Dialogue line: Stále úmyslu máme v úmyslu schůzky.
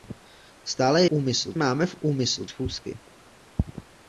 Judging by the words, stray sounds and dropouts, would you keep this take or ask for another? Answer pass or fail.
pass